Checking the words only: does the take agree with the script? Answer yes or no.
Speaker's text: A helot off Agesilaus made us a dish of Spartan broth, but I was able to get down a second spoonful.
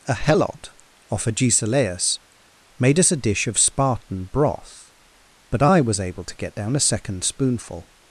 yes